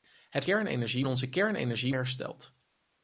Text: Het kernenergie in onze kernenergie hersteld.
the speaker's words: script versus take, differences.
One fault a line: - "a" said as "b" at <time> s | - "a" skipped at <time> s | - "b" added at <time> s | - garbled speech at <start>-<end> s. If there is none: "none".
none